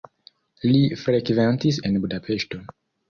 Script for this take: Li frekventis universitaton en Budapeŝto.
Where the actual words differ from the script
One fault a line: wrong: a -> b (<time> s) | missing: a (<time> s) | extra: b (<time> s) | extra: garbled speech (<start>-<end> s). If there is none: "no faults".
missing: universitaton (1.8 s)